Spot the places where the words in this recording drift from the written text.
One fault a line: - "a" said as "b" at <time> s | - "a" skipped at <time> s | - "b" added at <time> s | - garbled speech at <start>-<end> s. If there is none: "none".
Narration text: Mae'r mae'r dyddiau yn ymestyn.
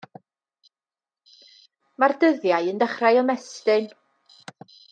- "mae'r" skipped at 2.1 s
- "dechrau" added at 2.8 s